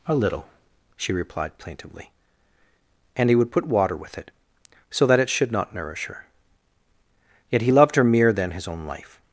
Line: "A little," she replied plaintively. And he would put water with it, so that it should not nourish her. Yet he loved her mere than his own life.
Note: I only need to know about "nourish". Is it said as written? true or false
true